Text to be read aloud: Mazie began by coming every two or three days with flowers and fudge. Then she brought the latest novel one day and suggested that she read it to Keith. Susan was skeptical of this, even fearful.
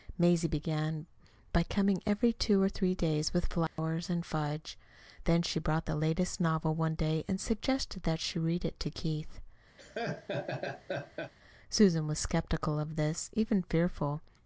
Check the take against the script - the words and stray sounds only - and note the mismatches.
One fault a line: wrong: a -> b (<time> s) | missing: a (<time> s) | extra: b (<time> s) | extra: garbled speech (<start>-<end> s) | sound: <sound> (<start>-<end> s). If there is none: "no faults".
sound: dropout (3.7-3.8 s)
sound: laugh (9.8-11.3 s)